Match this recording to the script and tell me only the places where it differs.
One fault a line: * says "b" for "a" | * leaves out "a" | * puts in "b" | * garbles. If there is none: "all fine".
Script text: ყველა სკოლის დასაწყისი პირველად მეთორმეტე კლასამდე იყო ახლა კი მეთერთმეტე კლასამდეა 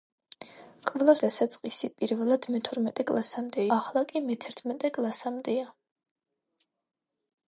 * leaves out "სკოლის"
* leaves out "იყო"